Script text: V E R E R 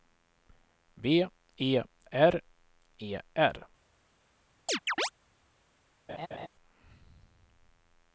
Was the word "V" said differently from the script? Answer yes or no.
no